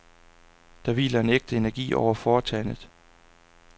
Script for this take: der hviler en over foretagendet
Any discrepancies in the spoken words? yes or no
yes